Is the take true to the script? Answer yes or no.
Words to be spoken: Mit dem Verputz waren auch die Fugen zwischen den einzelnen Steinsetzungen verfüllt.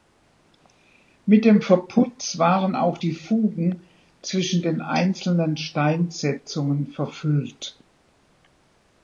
yes